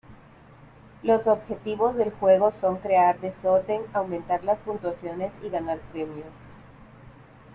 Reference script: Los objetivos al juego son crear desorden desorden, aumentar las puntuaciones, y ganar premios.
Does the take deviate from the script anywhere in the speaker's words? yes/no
yes